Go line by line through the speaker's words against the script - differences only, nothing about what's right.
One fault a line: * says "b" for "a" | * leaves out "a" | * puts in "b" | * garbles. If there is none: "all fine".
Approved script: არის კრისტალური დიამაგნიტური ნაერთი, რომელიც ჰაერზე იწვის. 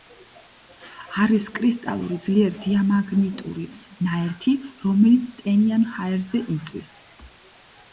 * puts in "ძლიერ"
* puts in "ტენიან"